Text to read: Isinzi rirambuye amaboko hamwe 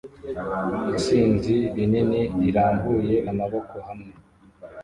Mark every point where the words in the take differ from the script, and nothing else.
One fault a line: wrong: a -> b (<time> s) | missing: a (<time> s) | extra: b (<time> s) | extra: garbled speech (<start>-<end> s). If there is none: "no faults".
extra: rinini (1.8 s)